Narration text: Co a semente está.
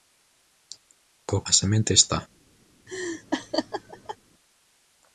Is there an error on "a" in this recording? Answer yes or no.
no